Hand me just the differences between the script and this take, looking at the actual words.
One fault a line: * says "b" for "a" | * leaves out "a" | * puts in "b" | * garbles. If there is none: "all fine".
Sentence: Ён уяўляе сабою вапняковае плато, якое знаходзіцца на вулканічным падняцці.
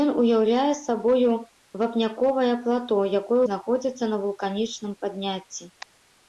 all fine